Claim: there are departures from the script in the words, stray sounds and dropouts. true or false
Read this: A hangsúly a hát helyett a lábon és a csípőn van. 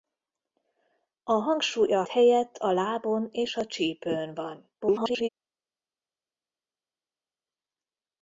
true